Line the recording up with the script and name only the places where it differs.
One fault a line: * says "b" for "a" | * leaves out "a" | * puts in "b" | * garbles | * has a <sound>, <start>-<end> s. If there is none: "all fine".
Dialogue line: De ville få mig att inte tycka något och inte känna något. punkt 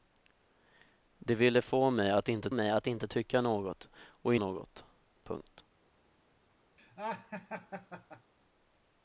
* puts in "mig att inte"
* leaves out "inte känna"
* has a laugh, 6.8-8.3 s